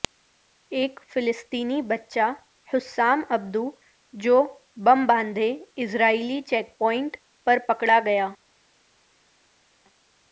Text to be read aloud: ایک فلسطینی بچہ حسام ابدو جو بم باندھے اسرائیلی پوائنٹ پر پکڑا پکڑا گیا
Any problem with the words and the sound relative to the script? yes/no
yes